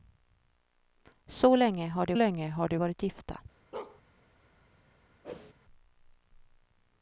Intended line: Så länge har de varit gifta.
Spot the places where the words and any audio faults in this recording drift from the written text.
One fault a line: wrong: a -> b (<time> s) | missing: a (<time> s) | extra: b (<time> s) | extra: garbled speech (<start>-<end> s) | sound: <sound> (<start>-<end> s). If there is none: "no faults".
extra: länge har de (2.1 s)
sound: bark (3.7-4.0 s)
sound: whoosh (5.2-5.5 s)